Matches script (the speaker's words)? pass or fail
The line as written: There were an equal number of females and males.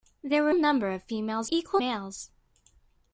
fail